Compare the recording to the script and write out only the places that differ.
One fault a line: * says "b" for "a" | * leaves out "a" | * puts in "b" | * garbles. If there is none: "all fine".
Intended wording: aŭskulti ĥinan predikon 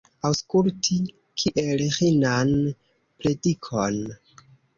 * puts in "kiel"